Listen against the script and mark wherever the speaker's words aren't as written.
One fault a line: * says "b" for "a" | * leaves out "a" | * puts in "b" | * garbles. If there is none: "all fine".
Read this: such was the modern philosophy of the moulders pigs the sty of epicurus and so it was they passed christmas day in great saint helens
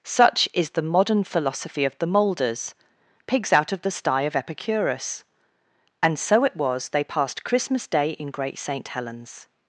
* says "is" for "was"
* puts in "out of"